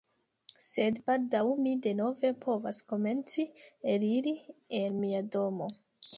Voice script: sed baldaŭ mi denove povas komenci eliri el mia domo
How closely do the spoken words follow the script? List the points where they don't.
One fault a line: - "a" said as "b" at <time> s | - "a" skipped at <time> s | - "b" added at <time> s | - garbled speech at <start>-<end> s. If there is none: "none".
none